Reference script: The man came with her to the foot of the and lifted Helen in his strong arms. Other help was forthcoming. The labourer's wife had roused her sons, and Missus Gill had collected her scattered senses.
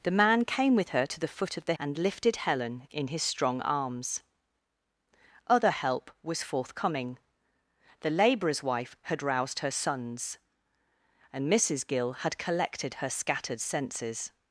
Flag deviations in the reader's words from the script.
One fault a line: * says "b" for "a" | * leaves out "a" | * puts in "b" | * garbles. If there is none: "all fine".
all fine